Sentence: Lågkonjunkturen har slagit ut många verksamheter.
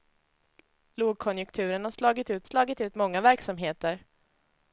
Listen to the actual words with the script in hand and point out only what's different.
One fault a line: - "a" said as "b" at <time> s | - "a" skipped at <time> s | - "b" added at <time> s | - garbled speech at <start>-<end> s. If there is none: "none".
- "slagit ut" added at 2.4 s